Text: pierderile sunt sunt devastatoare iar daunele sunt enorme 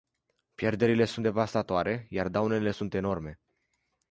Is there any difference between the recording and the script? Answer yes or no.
yes